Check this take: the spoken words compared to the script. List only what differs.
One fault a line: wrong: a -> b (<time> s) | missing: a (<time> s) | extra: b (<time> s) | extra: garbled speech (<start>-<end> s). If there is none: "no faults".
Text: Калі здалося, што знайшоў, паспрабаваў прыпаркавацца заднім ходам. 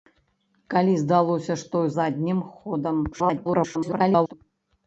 missing: знайшоў паспрабаваў прыпаркавацца (1.8 s)
extra: garbled speech (3.1-4.3 s)